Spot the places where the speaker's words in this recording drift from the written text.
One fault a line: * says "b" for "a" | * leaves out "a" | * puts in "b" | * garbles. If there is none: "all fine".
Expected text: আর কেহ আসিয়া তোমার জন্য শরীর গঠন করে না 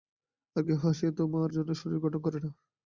all fine